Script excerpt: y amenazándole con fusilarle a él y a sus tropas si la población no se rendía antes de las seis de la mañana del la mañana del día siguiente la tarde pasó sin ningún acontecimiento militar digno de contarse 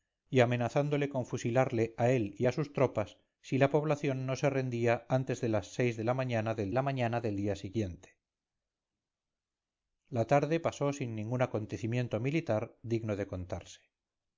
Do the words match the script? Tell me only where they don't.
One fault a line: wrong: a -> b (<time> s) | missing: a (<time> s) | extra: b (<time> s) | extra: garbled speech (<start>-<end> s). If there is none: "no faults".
no faults